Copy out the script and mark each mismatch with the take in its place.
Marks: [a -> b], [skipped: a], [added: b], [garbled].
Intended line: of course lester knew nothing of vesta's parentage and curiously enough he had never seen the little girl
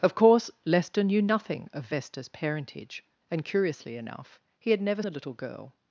of course lester knew nothing of vesta's parentage and curiously enough he had never [skipped: seen] the little girl